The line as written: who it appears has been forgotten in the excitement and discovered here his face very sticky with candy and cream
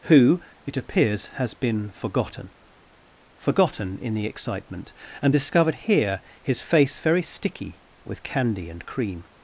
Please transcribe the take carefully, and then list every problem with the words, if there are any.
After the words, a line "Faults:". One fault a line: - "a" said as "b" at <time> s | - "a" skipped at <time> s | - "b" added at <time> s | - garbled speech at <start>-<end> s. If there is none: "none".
who it appears has been forgotten forgotten in the excitement and discovered here his face very sticky with candy and cream
Faults:
- "forgotten" added at 3.4 s